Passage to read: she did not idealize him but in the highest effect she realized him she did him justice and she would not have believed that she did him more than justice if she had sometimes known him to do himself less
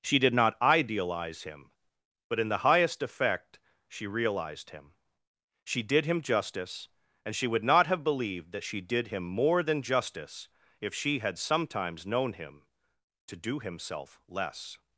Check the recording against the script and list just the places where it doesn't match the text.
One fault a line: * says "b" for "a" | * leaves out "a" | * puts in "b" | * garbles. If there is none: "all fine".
all fine